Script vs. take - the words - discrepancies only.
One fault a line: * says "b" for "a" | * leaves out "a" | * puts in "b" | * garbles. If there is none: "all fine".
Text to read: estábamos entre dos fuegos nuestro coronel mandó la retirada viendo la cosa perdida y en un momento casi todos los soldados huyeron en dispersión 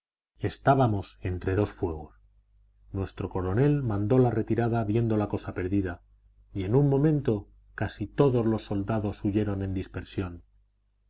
all fine